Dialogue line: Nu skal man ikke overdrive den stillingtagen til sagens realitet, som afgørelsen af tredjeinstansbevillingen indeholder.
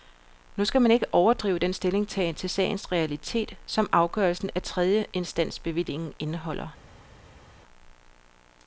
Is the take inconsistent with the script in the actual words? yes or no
no